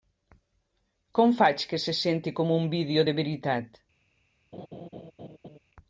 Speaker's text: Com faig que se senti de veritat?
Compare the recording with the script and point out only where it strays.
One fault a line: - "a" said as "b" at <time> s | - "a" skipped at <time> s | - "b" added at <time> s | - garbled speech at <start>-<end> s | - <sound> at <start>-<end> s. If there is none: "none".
- "com un vídeo" added at 2.3 s
- laugh at 4.5-5.6 s